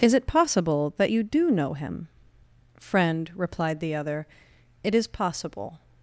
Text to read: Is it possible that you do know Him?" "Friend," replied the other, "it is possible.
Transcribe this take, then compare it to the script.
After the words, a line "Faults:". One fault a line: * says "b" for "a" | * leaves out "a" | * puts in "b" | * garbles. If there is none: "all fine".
Is it possible that you do know Him?" "Friend," replied the other, "it is possible.
Faults:
all fine